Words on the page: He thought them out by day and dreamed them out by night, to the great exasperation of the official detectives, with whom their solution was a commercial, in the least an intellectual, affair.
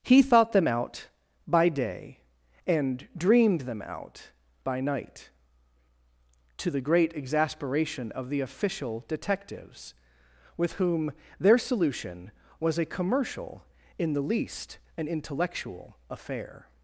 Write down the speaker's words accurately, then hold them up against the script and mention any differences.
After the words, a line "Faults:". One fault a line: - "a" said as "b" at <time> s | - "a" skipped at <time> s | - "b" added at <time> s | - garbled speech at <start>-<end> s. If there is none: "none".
He thought them out by day and dreamed them out by night, to the great exasperation of the official detectives, with whom their solution was a commercial, in the least an intellectual, affair.
Faults:
none